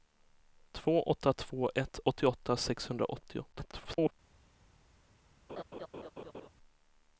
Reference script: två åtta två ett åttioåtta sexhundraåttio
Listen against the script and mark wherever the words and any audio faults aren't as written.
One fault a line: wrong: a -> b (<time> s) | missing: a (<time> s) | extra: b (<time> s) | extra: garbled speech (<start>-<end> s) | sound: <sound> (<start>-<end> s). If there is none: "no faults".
extra: garbled speech (3.5-4.1 s)
sound: laugh (5.5-6.5 s)